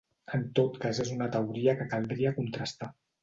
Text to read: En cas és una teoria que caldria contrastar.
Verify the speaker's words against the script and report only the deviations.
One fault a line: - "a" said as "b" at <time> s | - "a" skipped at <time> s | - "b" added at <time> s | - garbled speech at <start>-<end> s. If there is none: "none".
- "tot" added at 0.6 s